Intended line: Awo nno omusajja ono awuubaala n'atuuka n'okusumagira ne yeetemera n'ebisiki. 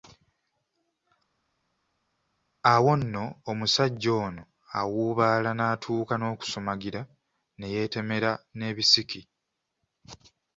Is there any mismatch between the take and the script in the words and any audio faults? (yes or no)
no